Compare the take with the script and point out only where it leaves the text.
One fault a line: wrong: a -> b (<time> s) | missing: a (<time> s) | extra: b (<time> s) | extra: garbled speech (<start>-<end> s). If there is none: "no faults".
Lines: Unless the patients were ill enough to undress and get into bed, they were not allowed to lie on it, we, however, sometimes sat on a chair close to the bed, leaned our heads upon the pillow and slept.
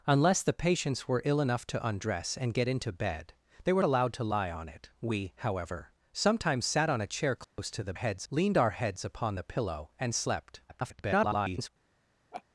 missing: not (3.8 s)
wrong: bed -> heads (7.9 s)
extra: garbled speech (10.7-11.7 s)